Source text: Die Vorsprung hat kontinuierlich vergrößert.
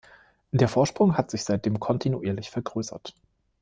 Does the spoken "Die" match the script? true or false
false